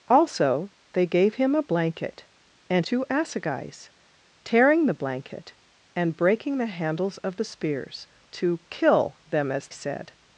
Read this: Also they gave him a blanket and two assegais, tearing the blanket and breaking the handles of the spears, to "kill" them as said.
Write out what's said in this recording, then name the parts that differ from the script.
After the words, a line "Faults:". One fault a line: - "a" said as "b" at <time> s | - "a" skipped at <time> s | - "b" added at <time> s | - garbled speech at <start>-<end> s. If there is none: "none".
Also they gave him a blanket and two assegais, tearing the blanket and breaking the handles of the spears, to "kill" them as said.
Faults:
none